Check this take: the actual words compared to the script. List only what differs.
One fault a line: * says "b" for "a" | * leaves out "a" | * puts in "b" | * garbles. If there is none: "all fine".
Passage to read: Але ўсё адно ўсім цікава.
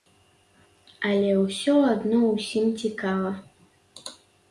all fine